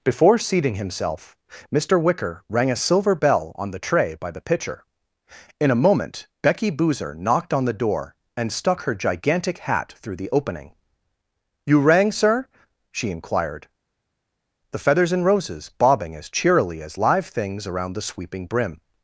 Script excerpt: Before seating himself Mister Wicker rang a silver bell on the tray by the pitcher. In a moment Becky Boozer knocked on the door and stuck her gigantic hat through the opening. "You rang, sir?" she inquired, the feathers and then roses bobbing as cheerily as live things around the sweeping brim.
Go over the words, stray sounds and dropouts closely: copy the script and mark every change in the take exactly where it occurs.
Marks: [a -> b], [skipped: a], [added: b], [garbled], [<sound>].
Before seating himself Mister Wicker rang a silver bell on the tray by the pitcher. In a moment Becky Boozer knocked on the door and stuck her gigantic hat through the opening. "You rang, sir?" she inquired, the feathers and [skipped: then] roses bobbing as cheerily as live things around the sweeping brim.